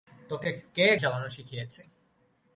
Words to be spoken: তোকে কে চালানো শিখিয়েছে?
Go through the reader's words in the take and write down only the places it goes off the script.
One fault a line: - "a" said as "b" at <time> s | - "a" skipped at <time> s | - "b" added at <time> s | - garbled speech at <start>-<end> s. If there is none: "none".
none